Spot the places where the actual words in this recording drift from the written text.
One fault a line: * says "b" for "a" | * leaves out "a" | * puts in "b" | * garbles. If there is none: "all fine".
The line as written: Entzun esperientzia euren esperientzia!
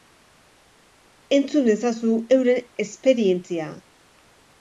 * says "ezazu" for "esperientzia"